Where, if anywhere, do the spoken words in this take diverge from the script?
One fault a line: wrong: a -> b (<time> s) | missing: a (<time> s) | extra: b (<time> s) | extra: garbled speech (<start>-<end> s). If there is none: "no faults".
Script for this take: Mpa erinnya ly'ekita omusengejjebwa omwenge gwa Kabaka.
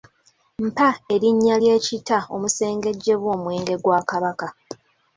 no faults